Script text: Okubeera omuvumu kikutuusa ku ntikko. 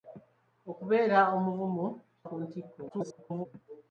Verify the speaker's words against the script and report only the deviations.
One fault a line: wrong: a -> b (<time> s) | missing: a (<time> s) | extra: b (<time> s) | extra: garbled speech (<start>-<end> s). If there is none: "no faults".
missing: kikutuusa (1.9 s)
extra: garbled speech (2.9-3.5 s)